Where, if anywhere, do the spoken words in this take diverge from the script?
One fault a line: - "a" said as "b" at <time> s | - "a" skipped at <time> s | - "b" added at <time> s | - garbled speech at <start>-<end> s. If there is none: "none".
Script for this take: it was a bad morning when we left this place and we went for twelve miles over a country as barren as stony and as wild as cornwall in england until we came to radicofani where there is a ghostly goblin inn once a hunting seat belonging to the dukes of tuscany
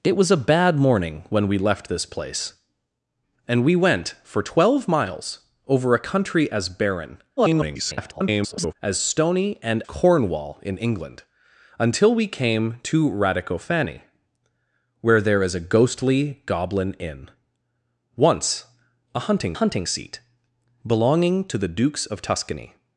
- garbled speech at 7.4-8.7 s
- "as wild as" skipped at 9.8 s
- "hunting" added at 19.5 s